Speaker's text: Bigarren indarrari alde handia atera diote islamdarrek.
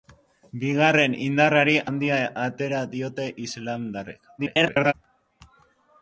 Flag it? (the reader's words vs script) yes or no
yes